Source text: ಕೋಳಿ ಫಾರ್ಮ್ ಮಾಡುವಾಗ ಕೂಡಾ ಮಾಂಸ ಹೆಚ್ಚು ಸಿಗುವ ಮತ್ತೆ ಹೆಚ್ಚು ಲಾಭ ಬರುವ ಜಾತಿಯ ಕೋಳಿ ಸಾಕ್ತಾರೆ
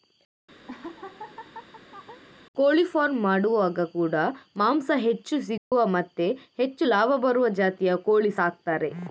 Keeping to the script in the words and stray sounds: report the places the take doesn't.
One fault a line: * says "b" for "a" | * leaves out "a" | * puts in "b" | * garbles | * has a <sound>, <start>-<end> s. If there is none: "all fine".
* has a laugh, 0.7-2.2 s
* has a dropout, 5.6-5.7 s